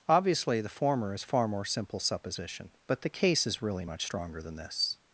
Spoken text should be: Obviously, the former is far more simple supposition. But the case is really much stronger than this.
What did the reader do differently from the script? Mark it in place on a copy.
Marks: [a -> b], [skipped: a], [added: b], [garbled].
Obviously, the former is far more simple supposition. But the case is really much stronger than this.